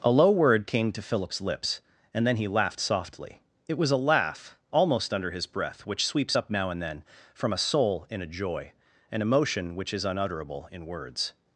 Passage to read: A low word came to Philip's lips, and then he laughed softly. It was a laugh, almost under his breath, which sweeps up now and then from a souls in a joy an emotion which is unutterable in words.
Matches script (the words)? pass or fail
fail